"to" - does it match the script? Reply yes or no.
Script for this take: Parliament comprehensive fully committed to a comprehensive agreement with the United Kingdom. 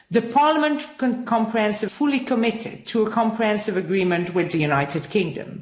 yes